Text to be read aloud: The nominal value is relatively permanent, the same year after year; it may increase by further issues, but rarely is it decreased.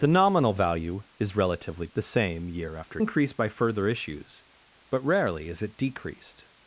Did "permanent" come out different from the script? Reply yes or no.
yes